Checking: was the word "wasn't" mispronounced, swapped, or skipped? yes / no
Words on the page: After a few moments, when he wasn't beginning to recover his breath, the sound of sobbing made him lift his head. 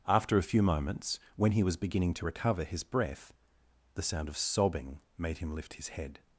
yes